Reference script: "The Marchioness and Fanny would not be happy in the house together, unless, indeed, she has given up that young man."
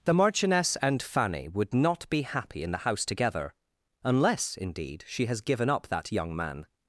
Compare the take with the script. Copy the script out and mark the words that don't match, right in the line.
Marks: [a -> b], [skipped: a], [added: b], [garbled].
"The Marchioness and Fanny would not be happy in the house together, unless, indeed, she has given up that young man."